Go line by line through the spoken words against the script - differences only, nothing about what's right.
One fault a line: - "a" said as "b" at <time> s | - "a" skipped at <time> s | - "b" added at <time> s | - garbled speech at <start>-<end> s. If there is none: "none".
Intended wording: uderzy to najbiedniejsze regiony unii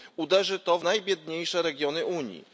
none